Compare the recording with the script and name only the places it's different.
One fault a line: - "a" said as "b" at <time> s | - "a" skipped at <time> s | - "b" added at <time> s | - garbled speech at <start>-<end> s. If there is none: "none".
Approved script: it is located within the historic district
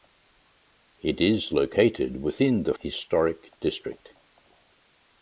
none